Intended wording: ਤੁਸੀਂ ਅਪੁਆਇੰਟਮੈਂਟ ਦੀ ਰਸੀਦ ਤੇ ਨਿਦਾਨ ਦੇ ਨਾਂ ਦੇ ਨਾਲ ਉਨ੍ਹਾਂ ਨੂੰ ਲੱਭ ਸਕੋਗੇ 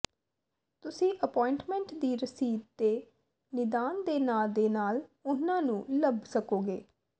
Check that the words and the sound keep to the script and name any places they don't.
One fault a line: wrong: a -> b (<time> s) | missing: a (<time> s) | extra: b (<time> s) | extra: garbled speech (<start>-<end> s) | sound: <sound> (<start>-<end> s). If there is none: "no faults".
no faults